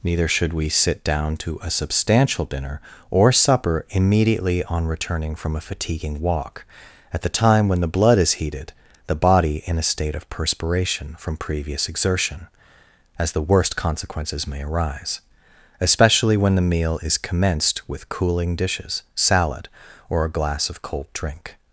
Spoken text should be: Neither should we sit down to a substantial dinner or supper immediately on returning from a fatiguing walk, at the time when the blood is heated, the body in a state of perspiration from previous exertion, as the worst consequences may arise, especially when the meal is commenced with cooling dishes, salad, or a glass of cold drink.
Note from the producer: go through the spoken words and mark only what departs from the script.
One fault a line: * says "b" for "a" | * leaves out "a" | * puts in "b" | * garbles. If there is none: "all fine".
all fine